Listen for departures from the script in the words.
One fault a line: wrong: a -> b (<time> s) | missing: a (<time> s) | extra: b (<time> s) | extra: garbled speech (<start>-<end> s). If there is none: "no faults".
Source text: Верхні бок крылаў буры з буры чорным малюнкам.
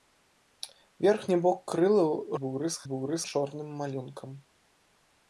no faults